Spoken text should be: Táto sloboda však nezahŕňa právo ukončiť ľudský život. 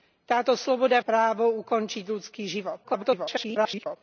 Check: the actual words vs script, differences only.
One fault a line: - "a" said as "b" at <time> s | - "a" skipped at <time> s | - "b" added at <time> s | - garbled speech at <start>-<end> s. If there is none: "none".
- "však nezahŕňa" skipped at 1.0 s
- garbled speech at 2.8-4.0 s